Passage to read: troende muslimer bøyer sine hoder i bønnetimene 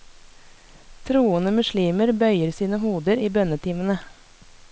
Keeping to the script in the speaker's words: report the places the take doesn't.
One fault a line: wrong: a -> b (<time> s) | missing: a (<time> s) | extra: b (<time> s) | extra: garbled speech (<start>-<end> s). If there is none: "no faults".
no faults